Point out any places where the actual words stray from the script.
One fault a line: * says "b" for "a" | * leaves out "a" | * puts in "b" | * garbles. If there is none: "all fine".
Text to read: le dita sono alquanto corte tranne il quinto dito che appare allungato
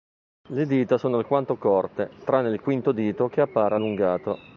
all fine